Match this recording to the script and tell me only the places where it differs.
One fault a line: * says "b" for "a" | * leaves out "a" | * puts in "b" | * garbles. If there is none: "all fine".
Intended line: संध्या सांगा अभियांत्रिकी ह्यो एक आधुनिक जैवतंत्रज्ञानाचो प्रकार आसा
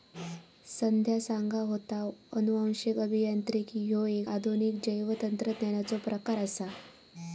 * puts in "होता अनुवांशिक"